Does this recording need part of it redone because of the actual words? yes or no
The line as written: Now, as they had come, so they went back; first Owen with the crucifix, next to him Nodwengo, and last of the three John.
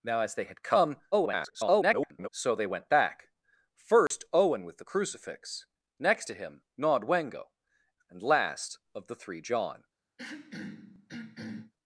yes